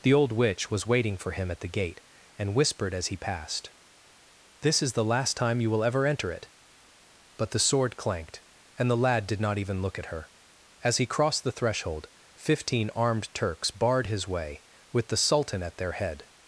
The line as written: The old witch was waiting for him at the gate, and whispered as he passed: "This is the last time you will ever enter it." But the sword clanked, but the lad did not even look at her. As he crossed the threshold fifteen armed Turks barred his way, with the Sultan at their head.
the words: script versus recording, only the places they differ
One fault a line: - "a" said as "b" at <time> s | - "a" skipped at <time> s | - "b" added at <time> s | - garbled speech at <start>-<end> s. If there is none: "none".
- "but" said as "and" at 8.8 s